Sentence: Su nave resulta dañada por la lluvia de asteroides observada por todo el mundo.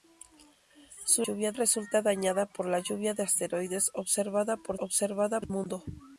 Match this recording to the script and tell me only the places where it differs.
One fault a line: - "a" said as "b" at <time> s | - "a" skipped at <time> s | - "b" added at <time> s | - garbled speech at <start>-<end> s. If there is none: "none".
- "nave" said as "lluvia" at 1.2 s
- "todo" said as "observada" at 4.8 s